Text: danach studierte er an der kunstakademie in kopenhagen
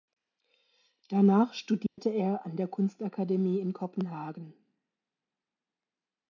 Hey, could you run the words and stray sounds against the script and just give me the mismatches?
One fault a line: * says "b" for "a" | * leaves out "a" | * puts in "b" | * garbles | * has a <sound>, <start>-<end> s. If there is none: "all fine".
* has a dropout, 1.9-2.0 s